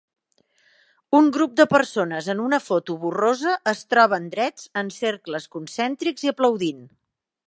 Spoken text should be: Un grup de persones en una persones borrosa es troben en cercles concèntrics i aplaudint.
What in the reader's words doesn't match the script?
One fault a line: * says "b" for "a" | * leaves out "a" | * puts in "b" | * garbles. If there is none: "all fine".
* says "foto" for "persones"
* puts in "drets"